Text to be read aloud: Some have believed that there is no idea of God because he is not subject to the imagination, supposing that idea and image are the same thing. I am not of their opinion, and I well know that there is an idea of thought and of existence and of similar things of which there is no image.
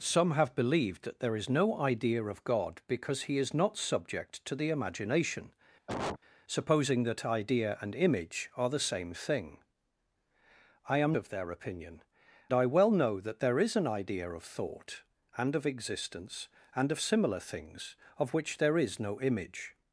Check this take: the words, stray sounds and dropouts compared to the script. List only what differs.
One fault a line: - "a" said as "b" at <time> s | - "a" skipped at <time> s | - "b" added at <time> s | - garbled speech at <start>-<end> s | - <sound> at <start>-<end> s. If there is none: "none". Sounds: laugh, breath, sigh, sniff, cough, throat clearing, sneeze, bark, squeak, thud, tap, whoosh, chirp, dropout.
- cough at 5.9-6.2 s
- "not" skipped at 11.2 s
- "and" skipped at 12.0 s